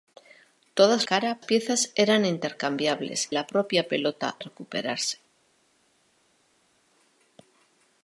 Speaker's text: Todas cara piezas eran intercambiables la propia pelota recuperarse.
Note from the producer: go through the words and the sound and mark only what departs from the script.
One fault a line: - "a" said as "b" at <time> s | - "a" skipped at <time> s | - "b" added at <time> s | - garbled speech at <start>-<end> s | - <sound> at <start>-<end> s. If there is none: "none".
none